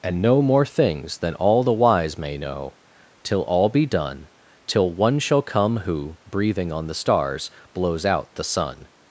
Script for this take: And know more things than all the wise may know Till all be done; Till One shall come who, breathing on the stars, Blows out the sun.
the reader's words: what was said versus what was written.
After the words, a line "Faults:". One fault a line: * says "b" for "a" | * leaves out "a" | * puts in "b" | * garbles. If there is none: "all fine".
And know more things than all the wise may know Till all be done; Till One shall come who, breathing on the stars, Blows out the sun.
Faults:
all fine